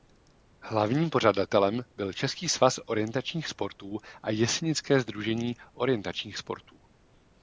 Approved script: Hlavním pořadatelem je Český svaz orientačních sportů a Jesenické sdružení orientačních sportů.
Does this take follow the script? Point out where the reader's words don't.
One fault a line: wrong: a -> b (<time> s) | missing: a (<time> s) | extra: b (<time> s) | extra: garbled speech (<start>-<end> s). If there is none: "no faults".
wrong: je -> byl (1.9 s)